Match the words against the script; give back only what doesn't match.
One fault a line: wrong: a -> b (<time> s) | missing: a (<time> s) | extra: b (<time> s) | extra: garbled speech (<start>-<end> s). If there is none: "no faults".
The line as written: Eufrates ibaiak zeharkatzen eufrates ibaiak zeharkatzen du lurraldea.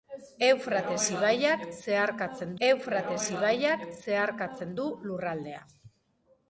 no faults